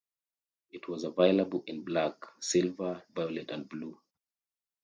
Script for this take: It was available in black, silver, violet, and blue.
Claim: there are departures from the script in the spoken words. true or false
false